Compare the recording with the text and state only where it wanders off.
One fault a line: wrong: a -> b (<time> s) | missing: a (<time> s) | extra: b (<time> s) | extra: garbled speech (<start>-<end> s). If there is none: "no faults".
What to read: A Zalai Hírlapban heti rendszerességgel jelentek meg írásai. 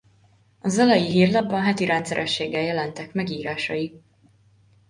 no faults